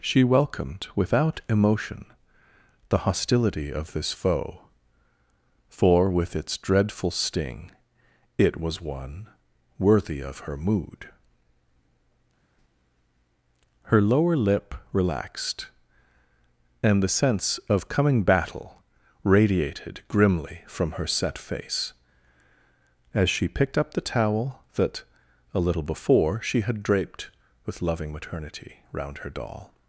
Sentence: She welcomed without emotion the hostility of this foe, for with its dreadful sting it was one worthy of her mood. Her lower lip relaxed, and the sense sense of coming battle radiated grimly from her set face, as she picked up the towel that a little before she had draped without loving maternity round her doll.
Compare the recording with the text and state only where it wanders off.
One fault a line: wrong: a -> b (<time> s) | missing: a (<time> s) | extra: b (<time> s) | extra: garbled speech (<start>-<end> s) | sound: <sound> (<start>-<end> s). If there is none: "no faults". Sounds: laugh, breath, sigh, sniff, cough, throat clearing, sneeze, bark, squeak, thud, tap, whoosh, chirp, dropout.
missing: sense (17.6 s)
wrong: without -> with (27.7 s)